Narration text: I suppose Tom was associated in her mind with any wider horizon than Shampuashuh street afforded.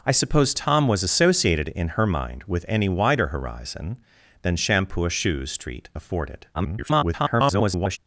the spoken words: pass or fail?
fail